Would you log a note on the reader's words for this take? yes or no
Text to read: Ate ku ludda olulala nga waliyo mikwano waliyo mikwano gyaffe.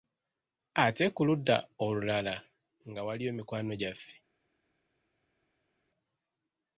yes